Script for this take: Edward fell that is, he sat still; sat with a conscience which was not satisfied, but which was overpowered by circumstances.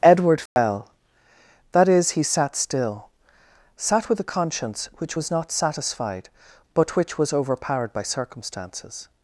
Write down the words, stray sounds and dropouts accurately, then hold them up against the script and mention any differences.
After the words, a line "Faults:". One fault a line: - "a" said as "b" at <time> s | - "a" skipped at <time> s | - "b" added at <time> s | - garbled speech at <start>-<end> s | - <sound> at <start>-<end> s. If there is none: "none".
Edward fell that is, he sat still; sat with a conscience which was not satisfied, but which was overpowered by circumstances.
Faults:
- dropout at 0.5-0.6 s